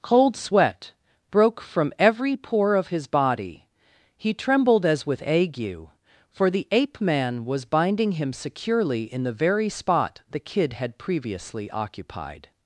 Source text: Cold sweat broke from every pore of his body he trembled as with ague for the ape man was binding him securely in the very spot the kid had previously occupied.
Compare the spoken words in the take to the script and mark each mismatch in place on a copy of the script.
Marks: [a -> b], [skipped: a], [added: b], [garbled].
Cold sweat broke from every pore of his body he trembled as with ague for the ape man was binding him securely in the very spot the kid had previously occupied.